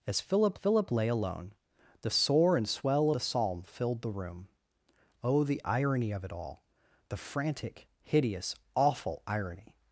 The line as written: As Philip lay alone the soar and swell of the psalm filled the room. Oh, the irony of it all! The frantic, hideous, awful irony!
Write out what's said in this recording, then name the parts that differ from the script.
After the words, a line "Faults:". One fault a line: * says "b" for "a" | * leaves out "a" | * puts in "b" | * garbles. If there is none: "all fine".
As Philip Philip lay alone the soar and swell the psalm filled the room. Oh, the irony of it all! The frantic, hideous, awful irony!
Faults:
* puts in "Philip"
* leaves out "of"